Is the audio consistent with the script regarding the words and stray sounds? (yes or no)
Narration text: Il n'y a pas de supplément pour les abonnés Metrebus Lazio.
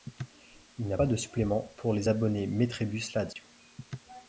no